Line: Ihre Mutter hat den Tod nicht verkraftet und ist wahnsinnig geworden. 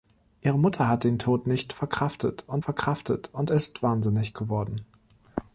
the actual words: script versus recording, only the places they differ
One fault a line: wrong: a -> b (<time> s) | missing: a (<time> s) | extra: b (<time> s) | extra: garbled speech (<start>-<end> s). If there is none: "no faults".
extra: verkraftet und (2.6 s)